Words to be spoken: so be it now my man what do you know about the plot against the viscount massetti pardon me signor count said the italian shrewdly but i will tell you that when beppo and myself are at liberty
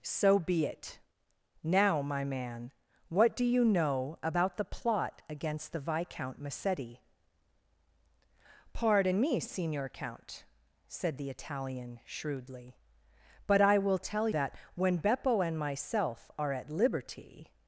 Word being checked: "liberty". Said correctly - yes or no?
yes